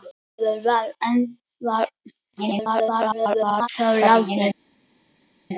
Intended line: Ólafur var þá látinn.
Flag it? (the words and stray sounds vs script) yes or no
yes